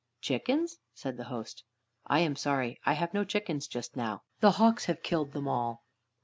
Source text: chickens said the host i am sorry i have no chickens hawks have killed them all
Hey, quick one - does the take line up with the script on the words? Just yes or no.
no